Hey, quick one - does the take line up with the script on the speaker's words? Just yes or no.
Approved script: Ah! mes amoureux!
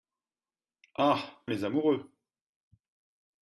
yes